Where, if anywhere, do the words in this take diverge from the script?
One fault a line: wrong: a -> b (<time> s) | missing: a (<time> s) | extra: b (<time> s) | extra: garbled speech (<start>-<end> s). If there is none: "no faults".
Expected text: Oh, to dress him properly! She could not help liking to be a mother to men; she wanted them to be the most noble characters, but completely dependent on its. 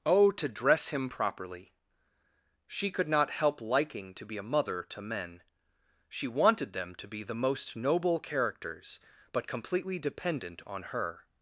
wrong: its -> her (10.8 s)